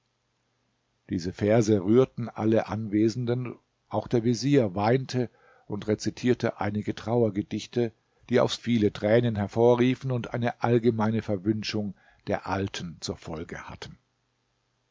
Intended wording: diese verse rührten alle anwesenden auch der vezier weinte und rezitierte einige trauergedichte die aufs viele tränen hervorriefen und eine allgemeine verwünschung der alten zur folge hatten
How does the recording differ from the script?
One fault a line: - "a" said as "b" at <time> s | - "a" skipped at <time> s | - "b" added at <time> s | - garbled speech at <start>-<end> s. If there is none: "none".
none